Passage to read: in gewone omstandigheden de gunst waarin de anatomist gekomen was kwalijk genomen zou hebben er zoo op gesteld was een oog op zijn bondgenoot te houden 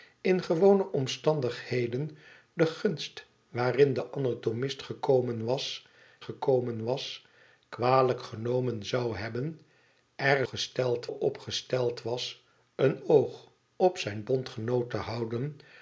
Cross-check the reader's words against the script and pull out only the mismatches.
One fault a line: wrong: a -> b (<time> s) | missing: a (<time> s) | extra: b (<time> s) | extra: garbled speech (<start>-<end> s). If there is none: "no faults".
extra: gekomen was (6.2 s)
wrong: zoo -> gesteld (10.4 s)